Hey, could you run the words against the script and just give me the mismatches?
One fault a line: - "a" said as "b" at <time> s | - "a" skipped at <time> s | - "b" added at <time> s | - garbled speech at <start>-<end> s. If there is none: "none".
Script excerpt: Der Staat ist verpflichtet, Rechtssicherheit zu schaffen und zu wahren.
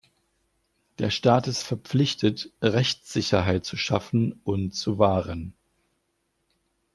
none